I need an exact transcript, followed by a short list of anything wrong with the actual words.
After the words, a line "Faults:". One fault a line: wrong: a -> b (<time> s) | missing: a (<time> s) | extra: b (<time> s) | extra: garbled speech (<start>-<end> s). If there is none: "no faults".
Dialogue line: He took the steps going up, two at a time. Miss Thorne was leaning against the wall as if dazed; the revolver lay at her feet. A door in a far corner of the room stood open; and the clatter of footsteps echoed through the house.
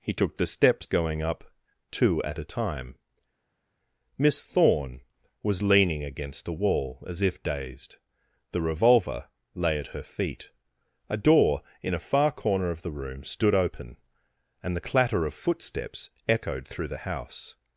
He took the steps going up, two at a time. Miss Thorne was leaning against the wall as if dazed; the revolver lay at her feet. A door in a far corner of the room stood open; and the clatter of footsteps echoed through the house.
Faults:
no faults